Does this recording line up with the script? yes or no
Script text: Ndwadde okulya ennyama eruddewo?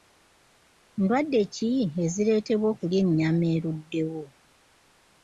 no